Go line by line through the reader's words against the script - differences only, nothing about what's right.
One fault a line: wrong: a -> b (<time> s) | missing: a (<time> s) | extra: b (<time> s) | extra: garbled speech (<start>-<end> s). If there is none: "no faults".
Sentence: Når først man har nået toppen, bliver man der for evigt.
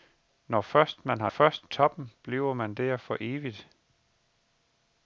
wrong: nået -> først (1.3 s)